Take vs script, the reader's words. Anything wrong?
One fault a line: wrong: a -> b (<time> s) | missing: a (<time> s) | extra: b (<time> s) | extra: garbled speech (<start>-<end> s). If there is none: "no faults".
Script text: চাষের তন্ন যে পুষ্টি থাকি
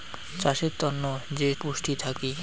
no faults